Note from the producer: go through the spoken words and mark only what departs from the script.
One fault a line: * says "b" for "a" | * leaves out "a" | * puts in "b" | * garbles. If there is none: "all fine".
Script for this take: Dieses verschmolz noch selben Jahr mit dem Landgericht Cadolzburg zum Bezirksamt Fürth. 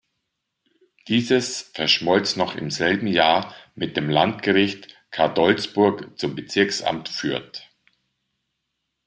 * puts in "im"